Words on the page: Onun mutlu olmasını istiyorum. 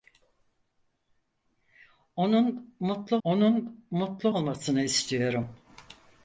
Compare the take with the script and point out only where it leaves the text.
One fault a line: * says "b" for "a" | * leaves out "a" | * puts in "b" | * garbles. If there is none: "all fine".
* puts in "onun mutlu"